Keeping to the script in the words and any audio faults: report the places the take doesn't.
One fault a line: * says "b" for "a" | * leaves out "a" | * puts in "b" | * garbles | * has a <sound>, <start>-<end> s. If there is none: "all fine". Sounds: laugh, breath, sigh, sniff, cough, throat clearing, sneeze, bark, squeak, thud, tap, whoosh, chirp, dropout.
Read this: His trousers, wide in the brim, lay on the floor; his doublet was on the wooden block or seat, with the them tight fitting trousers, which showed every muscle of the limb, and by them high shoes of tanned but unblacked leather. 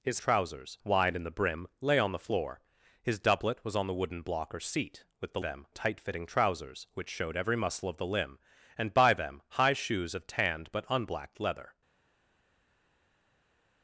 all fine